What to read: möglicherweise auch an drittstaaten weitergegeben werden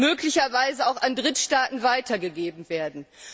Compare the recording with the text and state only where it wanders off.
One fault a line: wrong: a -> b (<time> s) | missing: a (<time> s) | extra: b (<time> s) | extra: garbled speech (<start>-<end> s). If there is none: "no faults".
no faults